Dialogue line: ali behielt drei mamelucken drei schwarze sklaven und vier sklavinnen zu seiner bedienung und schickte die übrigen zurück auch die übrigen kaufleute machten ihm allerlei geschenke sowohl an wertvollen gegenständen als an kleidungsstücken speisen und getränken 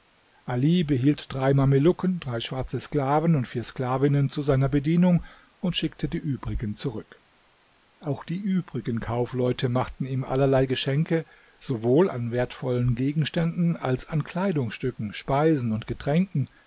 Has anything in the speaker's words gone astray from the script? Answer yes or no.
no